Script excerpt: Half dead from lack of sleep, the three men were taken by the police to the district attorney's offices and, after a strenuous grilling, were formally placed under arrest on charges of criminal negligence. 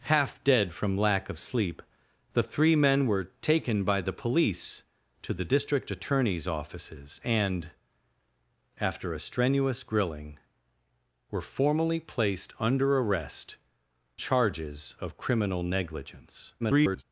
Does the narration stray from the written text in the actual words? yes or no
yes